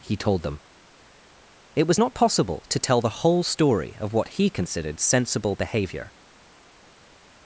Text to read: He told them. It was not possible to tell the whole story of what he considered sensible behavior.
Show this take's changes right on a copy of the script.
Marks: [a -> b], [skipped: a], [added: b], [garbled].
He told them. It was not possible to tell the whole story of what he considered sensible behavior.